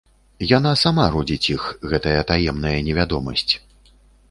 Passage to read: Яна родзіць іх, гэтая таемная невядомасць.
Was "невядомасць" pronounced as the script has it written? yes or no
yes